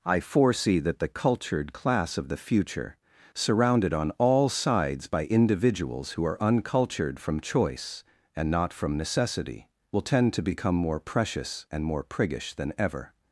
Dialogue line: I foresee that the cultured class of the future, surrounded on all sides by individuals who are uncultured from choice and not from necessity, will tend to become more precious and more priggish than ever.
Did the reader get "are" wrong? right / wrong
right